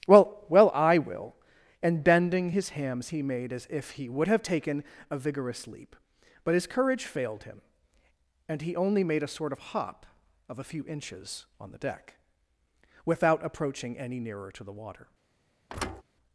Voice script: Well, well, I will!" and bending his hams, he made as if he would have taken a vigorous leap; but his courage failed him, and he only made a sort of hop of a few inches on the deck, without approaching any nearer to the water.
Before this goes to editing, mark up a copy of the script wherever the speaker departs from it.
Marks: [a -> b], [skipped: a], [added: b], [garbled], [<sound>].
Well, well, I will!" and bending his hams, he made as if he would have taken a vigorous leap; but his courage failed him, and he only made a sort of hop of a few inches on the deck, without approaching any nearer to the water. [thud]